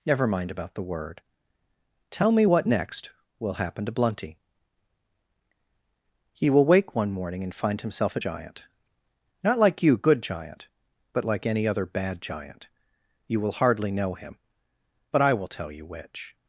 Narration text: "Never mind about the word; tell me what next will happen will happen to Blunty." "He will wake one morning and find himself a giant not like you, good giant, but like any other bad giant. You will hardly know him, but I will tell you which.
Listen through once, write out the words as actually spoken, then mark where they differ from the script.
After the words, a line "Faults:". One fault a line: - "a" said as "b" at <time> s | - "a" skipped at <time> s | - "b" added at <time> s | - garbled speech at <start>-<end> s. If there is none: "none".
"Never mind about the word; tell me what next will happen to Blunty." "He will wake one morning and find himself a giant not like you, good giant, but like any other bad giant. You will hardly know him, but I will tell you which.
Faults:
- "will happen" skipped at 3.9 s